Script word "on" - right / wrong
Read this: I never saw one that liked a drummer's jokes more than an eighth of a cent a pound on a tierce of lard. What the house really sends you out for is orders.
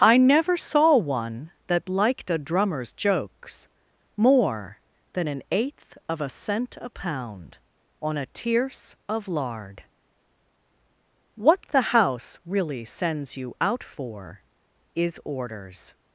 right